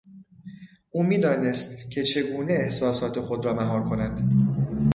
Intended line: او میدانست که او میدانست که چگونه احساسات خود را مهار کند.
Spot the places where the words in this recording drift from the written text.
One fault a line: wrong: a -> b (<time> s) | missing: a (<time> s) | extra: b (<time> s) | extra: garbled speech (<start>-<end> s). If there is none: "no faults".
missing: او میدانست که (2.0 s)